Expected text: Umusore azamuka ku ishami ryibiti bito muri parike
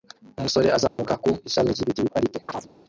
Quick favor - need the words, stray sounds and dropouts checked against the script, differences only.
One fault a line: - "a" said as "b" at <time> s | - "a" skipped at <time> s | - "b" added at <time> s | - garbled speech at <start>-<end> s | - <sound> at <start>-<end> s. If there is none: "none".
- dropout at 0.9-1.0 s
- "bito muri" skipped at 2.0 s
- chirp at 2.5-2.7 s